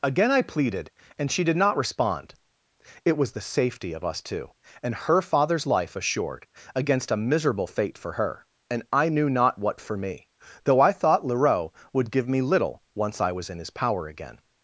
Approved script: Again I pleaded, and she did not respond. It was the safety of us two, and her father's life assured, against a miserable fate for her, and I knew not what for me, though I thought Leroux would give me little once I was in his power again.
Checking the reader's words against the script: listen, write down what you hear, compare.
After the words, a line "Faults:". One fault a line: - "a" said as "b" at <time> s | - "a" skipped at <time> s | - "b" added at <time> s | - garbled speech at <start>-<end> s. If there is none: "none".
Again I pleaded, and she did not respond. It was the safety of us two, and her father's life assured, against a miserable fate for her, and I knew not what for me, though I thought Leroux would give me little once I was in his power again.
Faults:
none